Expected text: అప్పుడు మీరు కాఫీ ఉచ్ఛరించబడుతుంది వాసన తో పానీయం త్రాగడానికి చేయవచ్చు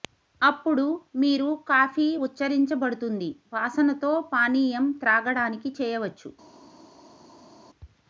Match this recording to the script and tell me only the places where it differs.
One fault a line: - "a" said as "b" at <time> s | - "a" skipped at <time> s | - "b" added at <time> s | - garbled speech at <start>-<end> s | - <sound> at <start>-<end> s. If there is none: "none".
none